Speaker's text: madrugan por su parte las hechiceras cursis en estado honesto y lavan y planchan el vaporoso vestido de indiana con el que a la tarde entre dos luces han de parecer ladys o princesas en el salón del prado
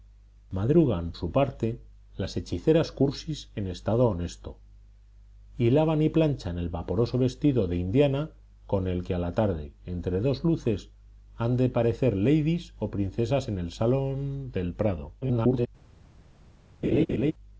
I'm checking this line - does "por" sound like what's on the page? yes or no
no